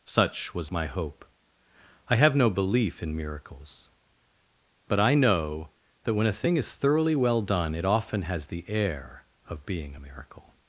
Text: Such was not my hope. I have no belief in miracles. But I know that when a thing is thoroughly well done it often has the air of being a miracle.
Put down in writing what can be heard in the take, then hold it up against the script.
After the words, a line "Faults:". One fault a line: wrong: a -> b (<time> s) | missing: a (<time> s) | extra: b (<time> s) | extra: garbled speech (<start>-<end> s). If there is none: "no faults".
Such was my hope. I have no belief in miracles. But I know that when a thing is thoroughly well done it often has the air of being a miracle.
Faults:
missing: not (0.7 s)